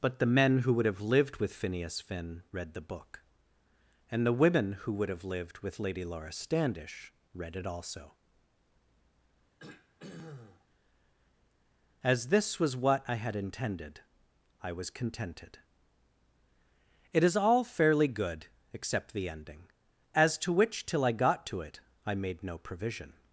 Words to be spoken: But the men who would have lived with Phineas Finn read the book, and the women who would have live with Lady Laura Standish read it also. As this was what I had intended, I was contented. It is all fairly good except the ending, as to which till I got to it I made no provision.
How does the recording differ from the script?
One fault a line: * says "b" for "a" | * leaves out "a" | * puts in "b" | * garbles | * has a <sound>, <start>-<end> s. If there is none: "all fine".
* says "lived" for "live"
* has a throat clearing, 9.6-10.7 s